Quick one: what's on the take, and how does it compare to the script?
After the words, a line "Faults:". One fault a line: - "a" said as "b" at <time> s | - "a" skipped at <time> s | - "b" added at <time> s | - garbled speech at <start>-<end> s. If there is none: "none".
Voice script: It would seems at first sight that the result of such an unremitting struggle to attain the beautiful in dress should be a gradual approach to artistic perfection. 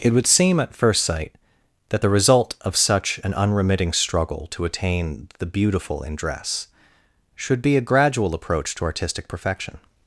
It would seem at first sight that the result of such an unremitting struggle to attain the beautiful in dress should be a gradual approach to artistic perfection.
Faults:
- "seems" said as "seem" at 0.2 s